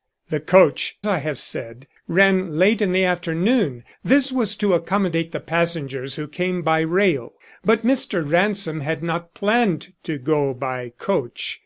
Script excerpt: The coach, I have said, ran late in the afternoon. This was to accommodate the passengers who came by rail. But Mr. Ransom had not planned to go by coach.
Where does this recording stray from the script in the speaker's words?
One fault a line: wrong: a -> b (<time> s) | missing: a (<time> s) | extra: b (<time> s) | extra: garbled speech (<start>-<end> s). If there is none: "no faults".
no faults